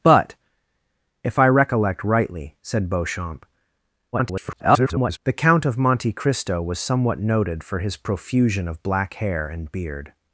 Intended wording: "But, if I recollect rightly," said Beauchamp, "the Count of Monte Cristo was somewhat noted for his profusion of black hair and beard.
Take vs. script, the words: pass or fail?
fail